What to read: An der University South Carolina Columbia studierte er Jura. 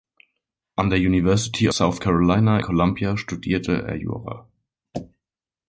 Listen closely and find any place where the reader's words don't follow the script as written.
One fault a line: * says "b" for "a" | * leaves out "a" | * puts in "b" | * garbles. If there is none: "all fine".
all fine